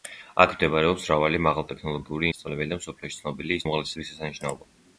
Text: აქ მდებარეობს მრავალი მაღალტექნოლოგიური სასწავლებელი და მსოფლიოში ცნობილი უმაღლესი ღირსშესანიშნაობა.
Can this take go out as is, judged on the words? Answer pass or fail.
pass